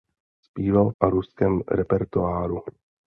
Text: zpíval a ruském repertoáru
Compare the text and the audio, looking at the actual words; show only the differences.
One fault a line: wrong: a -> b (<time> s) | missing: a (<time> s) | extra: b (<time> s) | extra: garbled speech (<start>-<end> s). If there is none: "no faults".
no faults